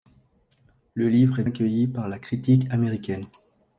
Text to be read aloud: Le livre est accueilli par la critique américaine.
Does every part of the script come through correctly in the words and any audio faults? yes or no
yes